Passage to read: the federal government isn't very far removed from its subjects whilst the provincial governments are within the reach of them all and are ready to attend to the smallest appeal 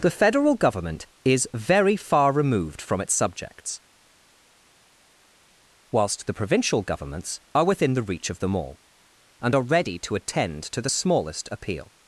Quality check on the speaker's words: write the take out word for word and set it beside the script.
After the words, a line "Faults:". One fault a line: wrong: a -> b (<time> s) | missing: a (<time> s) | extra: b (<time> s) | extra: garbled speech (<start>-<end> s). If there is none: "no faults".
the federal government is very far removed from its subjects whilst the provincial governments are within the reach of them all and are ready to attend to the smallest appeal
Faults:
wrong: isn't -> is (1.2 s)